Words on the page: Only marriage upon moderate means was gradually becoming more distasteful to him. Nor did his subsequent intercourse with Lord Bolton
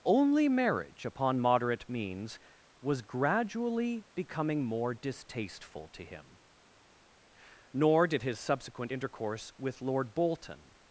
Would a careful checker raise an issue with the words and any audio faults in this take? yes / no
no